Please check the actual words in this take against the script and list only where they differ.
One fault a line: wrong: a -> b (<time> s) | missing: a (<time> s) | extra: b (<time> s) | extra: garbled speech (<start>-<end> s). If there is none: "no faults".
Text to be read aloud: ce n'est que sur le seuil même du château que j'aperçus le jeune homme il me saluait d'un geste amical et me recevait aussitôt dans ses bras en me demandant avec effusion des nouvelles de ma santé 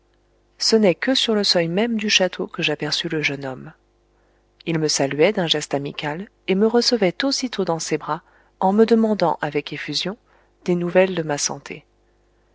no faults